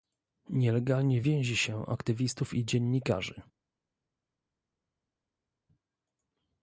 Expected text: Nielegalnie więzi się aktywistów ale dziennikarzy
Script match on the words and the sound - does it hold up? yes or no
no